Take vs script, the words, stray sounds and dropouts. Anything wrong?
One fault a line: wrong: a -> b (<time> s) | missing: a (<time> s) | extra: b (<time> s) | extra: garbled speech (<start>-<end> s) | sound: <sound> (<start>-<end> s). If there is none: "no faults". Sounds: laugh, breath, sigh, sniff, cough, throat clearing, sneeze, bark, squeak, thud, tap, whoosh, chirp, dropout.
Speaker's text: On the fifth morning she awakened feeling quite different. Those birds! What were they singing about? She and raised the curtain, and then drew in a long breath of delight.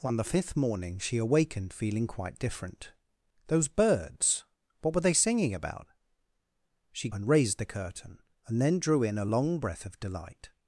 no faults